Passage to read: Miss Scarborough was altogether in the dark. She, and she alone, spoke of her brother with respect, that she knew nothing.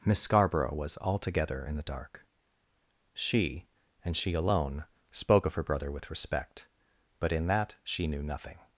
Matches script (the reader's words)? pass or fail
fail